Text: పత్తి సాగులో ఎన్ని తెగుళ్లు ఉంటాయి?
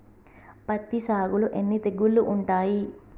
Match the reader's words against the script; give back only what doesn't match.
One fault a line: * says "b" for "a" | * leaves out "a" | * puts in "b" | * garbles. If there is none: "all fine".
all fine